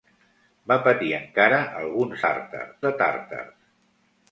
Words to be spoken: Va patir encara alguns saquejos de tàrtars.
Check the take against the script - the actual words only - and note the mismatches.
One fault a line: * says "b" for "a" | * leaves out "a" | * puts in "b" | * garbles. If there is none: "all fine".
* says "tàrtars" for "saquejos"